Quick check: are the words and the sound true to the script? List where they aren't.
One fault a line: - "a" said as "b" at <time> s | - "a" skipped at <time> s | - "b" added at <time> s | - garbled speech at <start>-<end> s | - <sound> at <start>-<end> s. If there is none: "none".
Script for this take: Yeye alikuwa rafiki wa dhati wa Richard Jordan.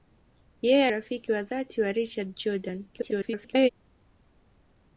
- "alikuwa" skipped at 0.8 s
- garbled speech at 2.9-3.7 s